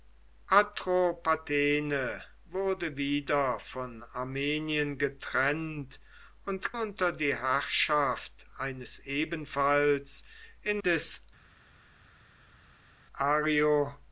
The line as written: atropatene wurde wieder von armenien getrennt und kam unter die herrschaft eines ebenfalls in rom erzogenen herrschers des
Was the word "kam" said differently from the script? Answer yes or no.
yes